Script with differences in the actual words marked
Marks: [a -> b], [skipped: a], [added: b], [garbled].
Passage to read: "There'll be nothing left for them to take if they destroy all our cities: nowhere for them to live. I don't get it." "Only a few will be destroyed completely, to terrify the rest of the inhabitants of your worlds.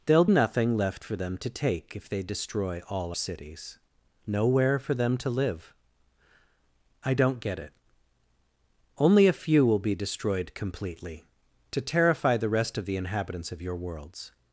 "There'll [skipped: be] nothing left for them to take if they destroy all [skipped: our] cities: nowhere for them to live. I don't get it." "Only a few will be destroyed completely, to terrify the rest of the inhabitants of your worlds.